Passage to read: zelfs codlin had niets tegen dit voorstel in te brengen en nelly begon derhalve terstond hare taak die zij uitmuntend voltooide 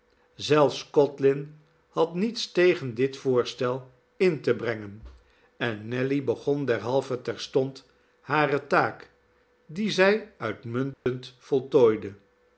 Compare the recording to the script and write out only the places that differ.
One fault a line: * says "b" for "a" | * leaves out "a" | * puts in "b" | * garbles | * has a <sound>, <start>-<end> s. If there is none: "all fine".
* has a dropout, 10.9-11.1 s